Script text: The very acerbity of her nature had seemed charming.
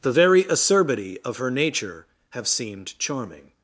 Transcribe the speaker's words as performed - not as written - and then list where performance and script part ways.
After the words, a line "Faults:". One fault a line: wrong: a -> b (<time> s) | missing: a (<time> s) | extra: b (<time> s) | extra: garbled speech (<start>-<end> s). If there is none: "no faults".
The very acerbity of her nature have seemed charming.
Faults:
wrong: had -> have (2.3 s)